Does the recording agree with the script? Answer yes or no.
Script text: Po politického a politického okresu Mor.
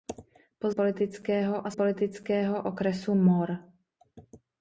yes